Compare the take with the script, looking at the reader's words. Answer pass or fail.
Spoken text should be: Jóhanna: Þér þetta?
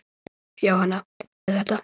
pass